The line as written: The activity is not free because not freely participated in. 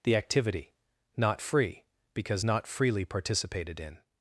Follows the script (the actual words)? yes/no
no